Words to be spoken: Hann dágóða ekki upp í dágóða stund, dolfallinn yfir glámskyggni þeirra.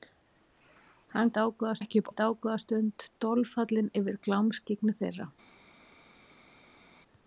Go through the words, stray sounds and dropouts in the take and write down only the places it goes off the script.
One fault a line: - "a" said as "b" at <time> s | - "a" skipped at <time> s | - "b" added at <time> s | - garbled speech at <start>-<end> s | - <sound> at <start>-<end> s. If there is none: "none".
none